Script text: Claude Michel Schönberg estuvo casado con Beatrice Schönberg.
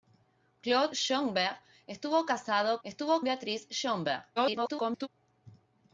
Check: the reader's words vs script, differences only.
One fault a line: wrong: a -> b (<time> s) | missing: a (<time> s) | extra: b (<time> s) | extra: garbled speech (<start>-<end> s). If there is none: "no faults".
missing: Michel (0.9 s)
wrong: con -> estuvo (2.8 s)
extra: garbled speech (4.4-5.1 s)